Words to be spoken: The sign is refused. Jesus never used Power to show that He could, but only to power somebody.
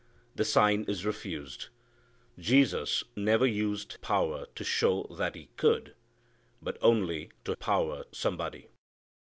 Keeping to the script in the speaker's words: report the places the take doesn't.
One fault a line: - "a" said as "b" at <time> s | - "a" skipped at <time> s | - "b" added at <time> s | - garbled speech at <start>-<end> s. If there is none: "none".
none